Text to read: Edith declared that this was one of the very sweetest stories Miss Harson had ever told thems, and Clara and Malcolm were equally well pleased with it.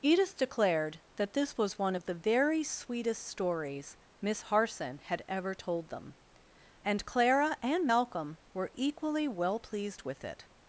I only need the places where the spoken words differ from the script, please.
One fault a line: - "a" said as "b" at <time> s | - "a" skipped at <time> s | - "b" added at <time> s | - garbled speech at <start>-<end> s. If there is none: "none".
- "thems" said as "them" at 5.9 s